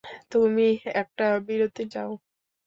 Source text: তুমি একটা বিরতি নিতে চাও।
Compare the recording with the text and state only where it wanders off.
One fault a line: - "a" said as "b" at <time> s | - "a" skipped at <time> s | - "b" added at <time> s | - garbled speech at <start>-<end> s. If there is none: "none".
- "নিতে" skipped at 1.8 s